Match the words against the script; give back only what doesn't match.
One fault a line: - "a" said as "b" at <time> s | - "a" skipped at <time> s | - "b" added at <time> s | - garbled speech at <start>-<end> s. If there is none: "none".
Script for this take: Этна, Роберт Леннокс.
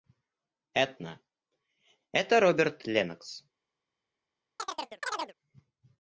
- "это" added at 2.1 s